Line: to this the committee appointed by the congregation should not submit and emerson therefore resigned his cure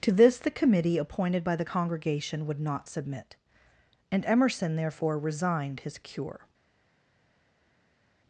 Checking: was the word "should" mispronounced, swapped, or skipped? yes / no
yes